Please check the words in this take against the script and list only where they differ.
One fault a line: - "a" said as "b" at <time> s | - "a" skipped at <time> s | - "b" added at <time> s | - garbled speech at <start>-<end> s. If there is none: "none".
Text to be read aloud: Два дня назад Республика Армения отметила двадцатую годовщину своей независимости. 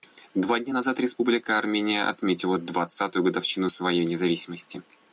none